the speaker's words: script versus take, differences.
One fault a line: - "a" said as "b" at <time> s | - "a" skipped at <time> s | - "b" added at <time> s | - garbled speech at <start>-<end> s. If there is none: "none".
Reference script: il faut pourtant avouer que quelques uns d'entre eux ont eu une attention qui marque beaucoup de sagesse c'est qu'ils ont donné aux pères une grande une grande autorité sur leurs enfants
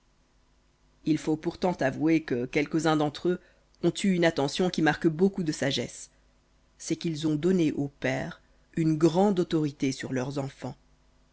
- "une grande" skipped at 9.4 s